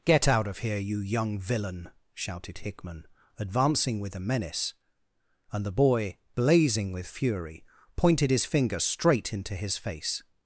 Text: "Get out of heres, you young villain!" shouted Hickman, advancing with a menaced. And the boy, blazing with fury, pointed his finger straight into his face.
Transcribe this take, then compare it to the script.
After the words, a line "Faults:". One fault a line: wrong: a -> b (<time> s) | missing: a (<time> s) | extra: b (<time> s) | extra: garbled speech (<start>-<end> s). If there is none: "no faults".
"Get out of here, you young villain!" shouted Hickman, advancing with a menace. And the boy, blazing with fury, pointed his finger straight into his face.
Faults:
wrong: heres -> here (0.6 s)
wrong: menaced -> menace (4.2 s)